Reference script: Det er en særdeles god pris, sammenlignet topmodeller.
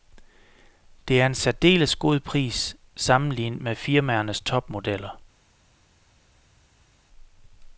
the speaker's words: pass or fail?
fail